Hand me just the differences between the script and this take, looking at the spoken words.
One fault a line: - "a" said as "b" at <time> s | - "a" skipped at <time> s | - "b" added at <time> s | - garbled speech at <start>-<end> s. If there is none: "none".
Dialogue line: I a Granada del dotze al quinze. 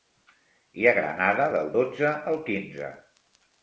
none